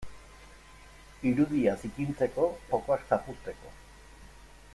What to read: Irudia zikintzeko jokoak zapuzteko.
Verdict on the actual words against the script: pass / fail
pass